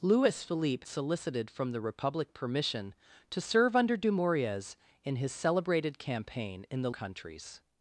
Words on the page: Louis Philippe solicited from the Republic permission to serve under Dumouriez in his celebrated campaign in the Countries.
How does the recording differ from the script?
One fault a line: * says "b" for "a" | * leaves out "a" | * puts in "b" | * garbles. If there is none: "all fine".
all fine